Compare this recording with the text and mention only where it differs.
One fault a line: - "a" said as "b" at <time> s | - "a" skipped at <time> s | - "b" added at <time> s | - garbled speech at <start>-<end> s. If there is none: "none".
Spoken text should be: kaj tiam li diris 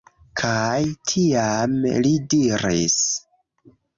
none